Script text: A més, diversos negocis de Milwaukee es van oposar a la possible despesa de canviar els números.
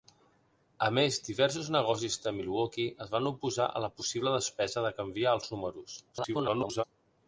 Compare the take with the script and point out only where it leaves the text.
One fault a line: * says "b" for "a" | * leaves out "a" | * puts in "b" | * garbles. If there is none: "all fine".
* garbles